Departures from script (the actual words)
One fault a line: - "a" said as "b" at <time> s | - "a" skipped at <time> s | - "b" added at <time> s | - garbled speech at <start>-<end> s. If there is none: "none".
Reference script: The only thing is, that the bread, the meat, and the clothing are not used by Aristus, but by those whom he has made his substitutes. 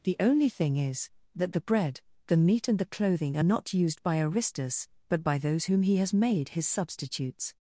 none